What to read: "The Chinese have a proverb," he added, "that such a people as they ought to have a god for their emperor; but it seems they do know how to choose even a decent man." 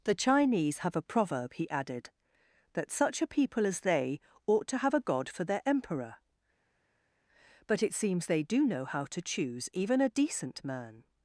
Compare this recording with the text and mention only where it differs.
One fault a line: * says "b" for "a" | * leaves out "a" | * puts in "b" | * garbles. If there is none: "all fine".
all fine